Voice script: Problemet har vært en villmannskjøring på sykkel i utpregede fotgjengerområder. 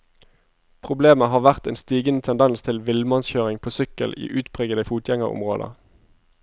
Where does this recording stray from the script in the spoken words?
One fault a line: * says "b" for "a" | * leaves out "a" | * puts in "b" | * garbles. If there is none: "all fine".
* puts in "stigende tendens til"